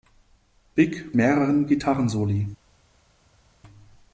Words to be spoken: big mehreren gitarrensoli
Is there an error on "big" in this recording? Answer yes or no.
no